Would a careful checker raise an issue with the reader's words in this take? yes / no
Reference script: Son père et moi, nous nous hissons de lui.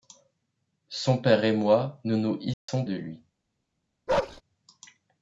no